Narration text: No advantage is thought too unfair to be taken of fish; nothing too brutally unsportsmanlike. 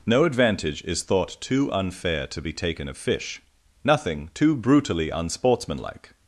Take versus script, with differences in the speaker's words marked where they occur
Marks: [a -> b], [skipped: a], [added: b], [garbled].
No advantage is thought too unfair to be taken of fish; nothing too brutally unsportsmanlike.